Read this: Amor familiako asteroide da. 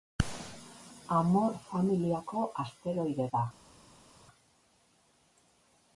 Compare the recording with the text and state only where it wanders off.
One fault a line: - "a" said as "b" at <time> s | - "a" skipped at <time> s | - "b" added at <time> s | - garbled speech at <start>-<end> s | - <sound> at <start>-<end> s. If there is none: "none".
none